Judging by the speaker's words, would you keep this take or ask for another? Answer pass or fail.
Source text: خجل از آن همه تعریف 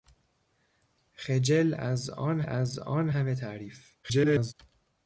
fail